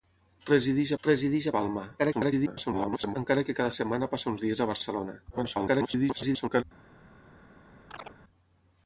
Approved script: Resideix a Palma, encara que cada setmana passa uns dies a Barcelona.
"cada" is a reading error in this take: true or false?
false